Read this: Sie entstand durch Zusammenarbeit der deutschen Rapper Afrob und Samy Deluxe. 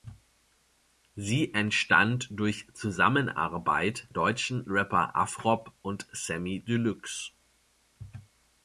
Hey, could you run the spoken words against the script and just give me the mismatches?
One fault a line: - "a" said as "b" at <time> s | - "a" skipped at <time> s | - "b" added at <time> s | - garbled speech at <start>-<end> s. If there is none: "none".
- "der" skipped at 4.1 s